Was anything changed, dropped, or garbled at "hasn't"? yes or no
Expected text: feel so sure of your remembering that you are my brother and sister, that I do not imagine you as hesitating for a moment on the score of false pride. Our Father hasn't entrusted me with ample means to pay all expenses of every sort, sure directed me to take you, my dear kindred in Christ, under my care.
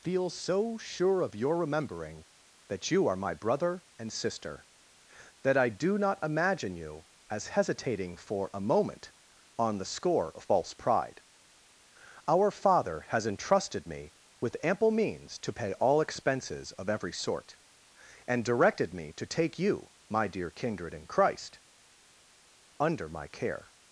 yes